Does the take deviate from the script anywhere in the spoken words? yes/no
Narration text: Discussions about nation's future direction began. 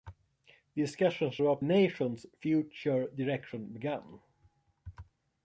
no